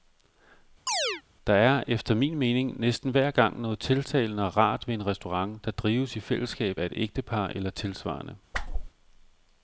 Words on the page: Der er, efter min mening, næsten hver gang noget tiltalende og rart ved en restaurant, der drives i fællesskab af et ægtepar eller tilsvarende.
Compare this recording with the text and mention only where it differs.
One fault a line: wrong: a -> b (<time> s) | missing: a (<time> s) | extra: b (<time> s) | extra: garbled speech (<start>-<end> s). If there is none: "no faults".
no faults